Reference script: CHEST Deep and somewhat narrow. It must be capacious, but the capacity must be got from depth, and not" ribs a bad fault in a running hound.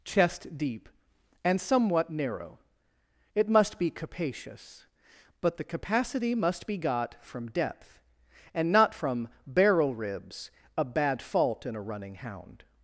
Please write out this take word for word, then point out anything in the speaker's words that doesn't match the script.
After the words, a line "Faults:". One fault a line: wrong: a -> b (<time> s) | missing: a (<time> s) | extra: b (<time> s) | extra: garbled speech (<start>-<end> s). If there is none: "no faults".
CHEST Deep and somewhat narrow. It must be capacious, but the capacity must be got from depth, and not from "barrel" ribs a bad fault in a running hound.
Faults:
extra: from barrel (8.9 s)